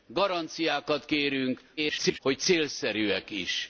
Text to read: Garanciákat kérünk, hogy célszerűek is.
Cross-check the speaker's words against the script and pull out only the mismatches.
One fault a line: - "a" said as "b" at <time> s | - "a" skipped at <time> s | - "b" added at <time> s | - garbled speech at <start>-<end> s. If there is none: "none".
- garbled speech at 1.8-2.2 s